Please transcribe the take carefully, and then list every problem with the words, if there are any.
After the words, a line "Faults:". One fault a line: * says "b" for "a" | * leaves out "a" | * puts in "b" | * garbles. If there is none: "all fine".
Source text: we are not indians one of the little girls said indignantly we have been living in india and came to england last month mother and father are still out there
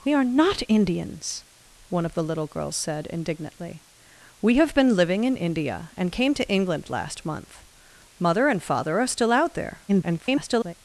we are not indians one of the little girls said indignantly we have been living in india and came to england last month mother and father are still out there [garbled]
Faults:
* garbles